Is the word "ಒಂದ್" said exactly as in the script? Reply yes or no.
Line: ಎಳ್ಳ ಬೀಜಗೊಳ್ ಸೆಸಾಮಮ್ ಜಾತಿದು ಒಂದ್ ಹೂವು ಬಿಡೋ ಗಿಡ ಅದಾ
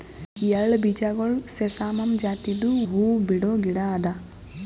no